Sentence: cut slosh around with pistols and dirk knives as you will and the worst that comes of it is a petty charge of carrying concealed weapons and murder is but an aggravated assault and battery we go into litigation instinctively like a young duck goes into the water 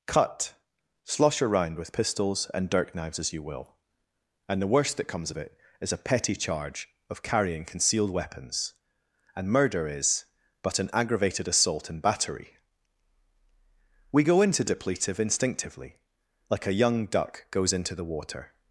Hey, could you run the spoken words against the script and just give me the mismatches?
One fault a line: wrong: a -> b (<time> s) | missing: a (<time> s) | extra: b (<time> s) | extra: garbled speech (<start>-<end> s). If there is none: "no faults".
wrong: litigation -> depletive (14.6 s)